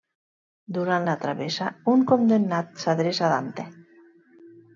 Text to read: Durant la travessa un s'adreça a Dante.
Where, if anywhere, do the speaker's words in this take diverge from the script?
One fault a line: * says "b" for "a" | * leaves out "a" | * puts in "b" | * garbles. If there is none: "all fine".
* puts in "condemnat"